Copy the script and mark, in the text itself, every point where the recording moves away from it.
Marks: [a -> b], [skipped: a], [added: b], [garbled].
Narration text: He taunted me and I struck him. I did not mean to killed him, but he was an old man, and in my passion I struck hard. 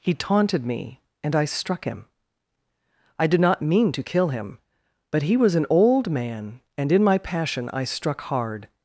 He taunted me and I struck him. I did not mean to [killed -> kill] him, but he was an old man, and in my passion I struck hard.